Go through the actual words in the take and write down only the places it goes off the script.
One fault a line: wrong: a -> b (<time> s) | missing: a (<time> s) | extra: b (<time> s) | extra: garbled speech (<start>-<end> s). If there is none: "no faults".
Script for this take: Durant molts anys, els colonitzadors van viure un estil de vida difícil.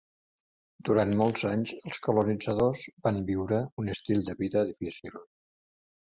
no faults